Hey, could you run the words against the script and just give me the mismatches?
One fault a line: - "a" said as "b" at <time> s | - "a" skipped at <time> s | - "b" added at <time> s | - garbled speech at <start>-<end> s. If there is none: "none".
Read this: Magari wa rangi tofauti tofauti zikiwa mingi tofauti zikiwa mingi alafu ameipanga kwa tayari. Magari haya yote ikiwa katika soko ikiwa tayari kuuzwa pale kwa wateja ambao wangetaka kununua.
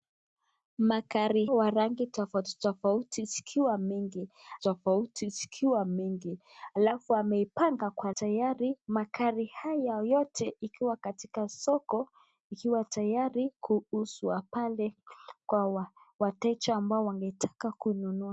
none